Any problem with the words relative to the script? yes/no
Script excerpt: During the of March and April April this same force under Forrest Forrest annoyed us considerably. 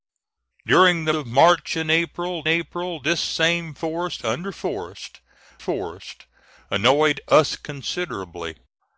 no